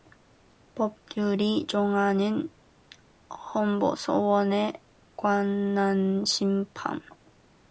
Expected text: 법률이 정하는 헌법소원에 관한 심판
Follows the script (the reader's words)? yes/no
yes